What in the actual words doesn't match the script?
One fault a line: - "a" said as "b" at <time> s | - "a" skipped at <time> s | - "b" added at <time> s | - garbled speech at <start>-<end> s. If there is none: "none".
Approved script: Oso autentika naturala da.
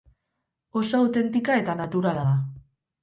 - "eta" added at 1.6 s